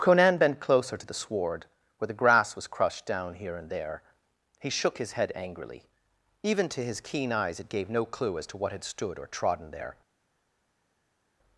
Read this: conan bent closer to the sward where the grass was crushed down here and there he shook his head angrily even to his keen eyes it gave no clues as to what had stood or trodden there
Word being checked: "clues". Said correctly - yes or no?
no